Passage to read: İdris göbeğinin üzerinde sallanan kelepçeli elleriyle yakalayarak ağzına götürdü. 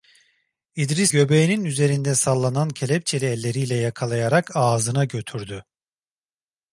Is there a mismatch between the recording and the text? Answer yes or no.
no